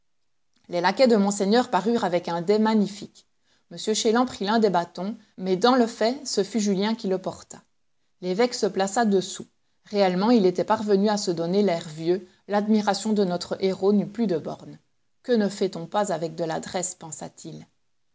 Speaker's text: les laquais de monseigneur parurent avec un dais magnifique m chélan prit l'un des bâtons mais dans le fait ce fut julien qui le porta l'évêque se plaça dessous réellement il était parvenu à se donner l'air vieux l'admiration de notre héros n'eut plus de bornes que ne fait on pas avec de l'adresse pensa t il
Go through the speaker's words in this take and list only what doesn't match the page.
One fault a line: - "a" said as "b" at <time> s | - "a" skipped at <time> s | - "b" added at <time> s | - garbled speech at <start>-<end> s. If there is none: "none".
none